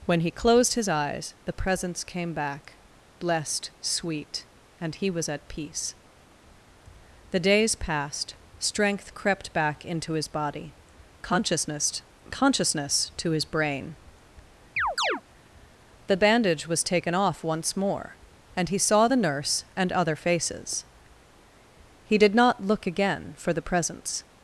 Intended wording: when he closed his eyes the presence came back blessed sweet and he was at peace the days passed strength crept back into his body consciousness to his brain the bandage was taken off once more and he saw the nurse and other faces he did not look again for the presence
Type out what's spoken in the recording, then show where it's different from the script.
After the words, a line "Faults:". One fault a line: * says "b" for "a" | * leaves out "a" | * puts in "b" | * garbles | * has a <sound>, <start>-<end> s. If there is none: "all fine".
when he closed his eyes the presence came back blessed sweet and he was at peace the days passed strength crept back into his body consciousness consciousness to his brain the bandage was taken off once more and he saw the nurse and other faces he did not look again for the presence
Faults:
* puts in "consciousness"
* has a chirp, 14.8-15.2 s